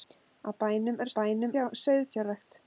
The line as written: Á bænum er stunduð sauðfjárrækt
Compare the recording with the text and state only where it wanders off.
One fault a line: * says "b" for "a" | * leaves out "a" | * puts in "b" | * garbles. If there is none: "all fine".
* says "bænum" for "stunduð"